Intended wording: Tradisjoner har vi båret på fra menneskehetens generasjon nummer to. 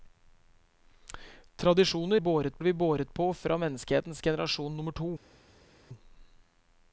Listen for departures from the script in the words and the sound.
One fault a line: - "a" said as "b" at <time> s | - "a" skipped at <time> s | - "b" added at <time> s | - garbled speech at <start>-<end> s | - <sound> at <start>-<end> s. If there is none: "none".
- "har" said as "båret" at 2.2 s